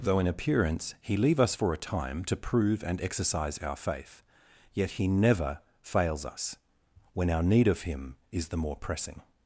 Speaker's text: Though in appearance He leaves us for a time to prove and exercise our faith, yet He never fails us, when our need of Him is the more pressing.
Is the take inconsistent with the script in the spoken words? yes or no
yes